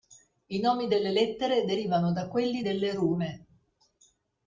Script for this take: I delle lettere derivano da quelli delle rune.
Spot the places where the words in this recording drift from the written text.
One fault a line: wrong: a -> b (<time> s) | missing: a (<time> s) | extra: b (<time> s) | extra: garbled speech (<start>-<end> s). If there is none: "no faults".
extra: nomi (0.6 s)